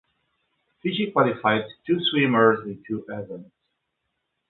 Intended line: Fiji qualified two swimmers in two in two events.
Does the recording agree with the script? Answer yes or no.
no